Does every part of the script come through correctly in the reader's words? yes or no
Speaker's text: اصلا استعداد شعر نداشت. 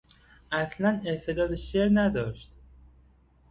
yes